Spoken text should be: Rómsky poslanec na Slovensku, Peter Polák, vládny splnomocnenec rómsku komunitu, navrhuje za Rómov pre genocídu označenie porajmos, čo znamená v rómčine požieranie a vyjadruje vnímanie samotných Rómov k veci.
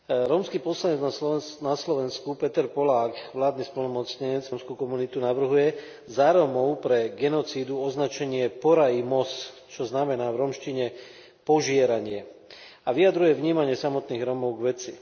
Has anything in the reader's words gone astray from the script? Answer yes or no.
no